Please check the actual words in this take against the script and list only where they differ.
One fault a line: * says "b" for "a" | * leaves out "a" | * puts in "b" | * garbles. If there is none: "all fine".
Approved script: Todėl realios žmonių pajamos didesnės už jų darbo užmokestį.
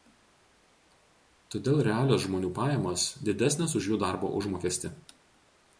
all fine